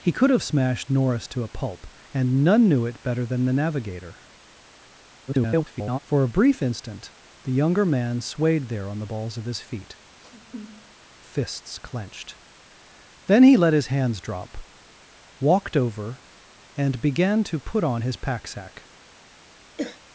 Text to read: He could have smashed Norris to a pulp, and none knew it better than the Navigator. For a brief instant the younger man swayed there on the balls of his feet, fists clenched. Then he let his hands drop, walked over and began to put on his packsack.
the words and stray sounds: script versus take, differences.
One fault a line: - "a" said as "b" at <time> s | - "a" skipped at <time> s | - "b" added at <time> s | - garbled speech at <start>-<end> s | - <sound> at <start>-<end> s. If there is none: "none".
- garbled speech at 5.3-6.0 s
- sniff at 10.1-11.0 s
- throat clearing at 19.8-20.0 s